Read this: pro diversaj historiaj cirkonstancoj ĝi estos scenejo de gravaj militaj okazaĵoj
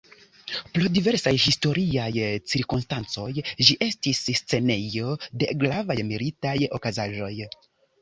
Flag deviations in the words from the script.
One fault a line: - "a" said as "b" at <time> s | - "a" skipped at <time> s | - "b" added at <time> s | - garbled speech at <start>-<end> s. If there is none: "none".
- "estos" said as "estis" at 3.9 s